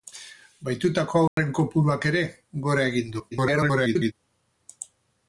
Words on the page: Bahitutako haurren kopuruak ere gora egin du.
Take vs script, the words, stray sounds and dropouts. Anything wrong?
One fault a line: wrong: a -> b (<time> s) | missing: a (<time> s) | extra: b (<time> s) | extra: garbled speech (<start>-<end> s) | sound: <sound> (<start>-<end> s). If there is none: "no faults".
sound: dropout (1.3-1.4 s)
extra: garbled speech (3.3-4.1 s)